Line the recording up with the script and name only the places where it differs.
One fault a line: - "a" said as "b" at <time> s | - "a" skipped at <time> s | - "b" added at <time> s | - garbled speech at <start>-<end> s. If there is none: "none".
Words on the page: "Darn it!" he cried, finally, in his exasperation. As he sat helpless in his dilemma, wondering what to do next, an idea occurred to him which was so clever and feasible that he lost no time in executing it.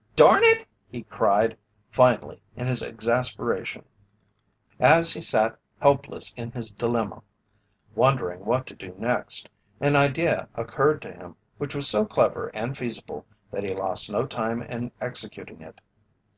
none